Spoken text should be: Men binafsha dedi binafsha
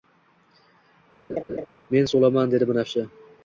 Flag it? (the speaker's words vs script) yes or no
yes